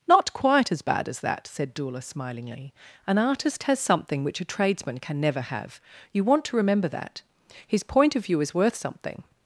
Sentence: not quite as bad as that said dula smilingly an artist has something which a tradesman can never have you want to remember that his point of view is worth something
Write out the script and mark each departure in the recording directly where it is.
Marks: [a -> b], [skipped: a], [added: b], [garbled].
not quite as bad as that said dula smilingly an artist has something which a tradesman can never have you want to remember that his point of view is worth something